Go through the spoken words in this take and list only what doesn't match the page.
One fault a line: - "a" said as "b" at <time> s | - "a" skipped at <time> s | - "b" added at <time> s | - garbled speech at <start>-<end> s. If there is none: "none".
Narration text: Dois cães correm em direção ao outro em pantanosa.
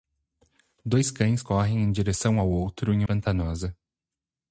none